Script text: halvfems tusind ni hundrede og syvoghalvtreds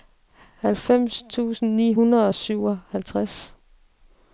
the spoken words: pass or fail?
pass